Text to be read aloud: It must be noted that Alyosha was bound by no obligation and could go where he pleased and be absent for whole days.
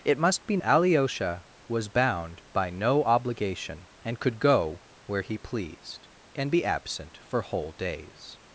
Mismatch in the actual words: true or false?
true